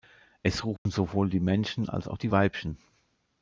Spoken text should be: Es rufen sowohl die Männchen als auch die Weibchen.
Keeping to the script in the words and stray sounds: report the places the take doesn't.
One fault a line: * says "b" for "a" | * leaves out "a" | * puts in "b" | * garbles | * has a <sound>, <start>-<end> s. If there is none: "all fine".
* has a dropout, 0.8-0.9 s